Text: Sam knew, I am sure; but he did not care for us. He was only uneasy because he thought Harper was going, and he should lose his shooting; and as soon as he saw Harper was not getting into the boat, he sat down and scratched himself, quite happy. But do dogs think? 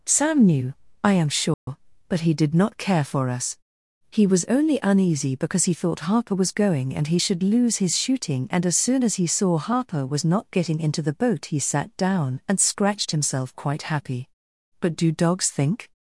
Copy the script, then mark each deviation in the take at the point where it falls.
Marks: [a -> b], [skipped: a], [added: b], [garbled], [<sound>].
Sam knew, I am sure; [dropout] but he did not care for us. He was only uneasy because he thought Harper was going, and he should lose his shooting; and as soon as he saw Harper was not getting into the boat, he sat down and scratched himself, quite happy. But do dogs think?